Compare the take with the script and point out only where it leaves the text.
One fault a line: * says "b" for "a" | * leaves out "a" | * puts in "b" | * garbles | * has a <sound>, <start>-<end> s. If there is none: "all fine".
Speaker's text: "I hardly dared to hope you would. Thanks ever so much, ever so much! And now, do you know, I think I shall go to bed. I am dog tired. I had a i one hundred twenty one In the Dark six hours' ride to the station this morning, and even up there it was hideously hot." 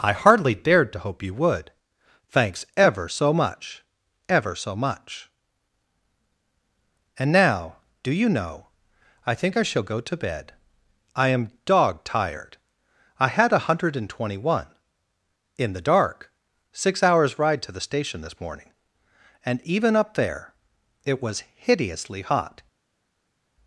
* says "hundred and" for "i one hundred"